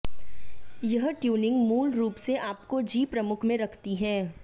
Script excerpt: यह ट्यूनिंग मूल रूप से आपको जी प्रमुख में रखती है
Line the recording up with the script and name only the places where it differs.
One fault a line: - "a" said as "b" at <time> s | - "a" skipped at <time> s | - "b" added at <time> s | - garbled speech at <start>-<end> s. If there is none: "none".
none